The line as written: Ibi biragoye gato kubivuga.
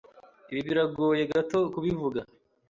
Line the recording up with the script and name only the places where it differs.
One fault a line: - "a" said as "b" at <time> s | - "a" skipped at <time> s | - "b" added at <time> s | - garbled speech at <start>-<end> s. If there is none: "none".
none